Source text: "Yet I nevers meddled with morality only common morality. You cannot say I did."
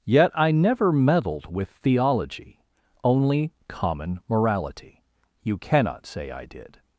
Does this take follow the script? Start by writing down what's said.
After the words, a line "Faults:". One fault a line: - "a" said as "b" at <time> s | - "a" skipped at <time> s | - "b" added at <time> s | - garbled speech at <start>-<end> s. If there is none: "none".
"Yet I never meddled with theology only common morality. You cannot say I did."
Faults:
- "nevers" said as "never" at 0.5 s
- "morality" said as "theology" at 1.7 s